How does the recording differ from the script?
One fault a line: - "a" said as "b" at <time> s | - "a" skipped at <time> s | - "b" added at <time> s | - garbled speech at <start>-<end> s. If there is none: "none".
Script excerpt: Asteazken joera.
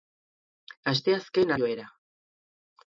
none